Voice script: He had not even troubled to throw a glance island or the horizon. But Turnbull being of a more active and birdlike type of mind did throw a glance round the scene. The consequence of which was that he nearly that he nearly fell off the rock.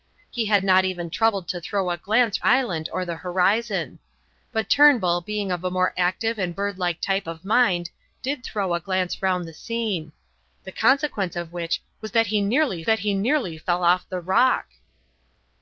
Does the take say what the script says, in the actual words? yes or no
yes